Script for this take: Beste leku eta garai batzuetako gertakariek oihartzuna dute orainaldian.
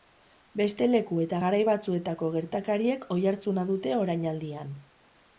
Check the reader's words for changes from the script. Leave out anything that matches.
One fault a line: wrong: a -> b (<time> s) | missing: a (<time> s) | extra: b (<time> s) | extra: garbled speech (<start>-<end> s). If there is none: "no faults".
no faults